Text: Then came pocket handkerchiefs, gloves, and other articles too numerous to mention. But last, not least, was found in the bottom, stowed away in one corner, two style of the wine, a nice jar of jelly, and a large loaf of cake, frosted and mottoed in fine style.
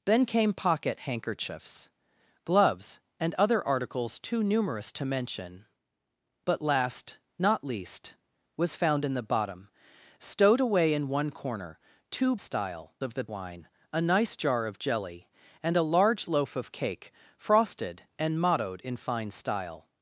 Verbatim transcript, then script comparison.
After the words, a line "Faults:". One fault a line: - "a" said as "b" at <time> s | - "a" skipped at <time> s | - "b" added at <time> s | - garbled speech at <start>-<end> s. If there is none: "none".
Then came pocket handkerchiefs, gloves, and other articles too numerous to mention. But last, not least, was found in the bottom, stowed away in one corner, two style of the wine, a nice jar of jelly, and a large loaf of cake, frosted and mottoed in fine style.
Faults:
none